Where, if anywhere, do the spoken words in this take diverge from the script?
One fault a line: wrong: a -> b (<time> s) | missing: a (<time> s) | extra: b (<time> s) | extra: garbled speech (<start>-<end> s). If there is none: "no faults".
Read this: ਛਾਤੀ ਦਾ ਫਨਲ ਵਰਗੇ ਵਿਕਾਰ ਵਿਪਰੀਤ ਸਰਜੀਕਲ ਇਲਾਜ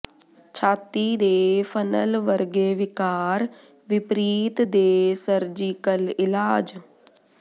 wrong: ਦਾ -> ਦੇ (1.1 s)
extra: ਦੇ (4.6 s)